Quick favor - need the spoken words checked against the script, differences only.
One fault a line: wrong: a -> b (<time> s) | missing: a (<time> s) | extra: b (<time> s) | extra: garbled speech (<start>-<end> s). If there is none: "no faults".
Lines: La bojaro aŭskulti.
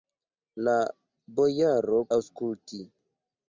no faults